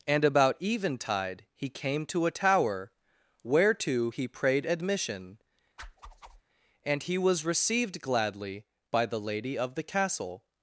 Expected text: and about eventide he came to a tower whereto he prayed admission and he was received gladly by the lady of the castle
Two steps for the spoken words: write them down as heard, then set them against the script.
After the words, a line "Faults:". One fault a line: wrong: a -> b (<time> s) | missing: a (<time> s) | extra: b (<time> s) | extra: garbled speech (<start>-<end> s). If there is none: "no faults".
and about eventide he came to a tower whereto he prayed admission and he was received gladly by the lady of the castle
Faults:
no faults